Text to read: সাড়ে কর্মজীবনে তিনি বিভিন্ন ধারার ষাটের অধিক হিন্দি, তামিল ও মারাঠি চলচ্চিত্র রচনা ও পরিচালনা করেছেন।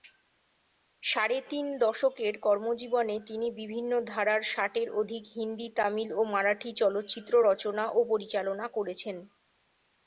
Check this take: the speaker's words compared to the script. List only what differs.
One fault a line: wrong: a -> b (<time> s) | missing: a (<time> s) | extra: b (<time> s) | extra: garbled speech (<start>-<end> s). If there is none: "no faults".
extra: তিন দশকের (1.5 s)